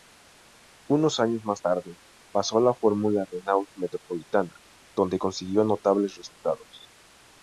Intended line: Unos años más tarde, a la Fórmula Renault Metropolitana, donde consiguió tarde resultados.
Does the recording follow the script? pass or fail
fail